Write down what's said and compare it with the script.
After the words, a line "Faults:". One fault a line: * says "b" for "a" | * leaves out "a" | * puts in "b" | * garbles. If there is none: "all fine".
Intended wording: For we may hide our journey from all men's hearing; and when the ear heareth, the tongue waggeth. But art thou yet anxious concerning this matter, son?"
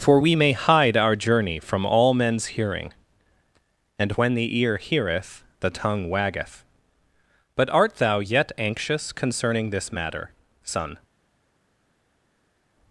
For we may hide our journey from all men's hearing; and when the ear heareth, the tongue waggeth. But art thou yet anxious concerning this matter, son?"
Faults:
all fine